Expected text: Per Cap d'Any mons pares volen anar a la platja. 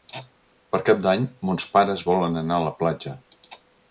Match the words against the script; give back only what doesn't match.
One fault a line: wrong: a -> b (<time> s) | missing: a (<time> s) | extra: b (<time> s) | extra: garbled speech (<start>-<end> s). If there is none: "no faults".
no faults